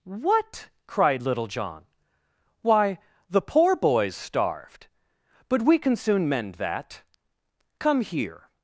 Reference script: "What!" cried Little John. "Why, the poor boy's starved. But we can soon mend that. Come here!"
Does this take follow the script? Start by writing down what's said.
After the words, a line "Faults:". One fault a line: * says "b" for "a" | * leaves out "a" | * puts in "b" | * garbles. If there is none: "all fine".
"What!" cried Little John. "Why, the poor boy's starved. But we can soon mend that. Come here!"
Faults:
all fine